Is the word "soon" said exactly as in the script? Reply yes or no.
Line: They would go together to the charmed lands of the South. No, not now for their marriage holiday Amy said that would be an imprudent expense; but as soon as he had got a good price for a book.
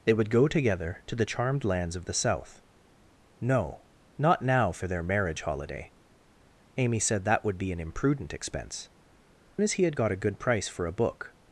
no